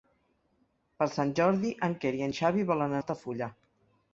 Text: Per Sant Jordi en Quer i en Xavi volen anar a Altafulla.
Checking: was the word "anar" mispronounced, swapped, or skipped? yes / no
yes